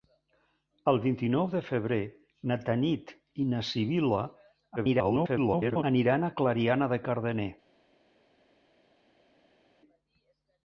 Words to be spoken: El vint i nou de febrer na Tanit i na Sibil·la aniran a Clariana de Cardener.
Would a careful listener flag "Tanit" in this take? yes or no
no